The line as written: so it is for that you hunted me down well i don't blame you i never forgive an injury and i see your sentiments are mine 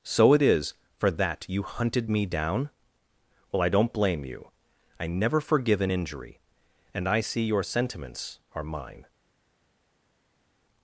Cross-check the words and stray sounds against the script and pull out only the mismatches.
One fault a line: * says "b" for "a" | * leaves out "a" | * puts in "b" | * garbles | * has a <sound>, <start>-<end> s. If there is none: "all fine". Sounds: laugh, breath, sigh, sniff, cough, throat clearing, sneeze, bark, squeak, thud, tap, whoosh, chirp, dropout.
all fine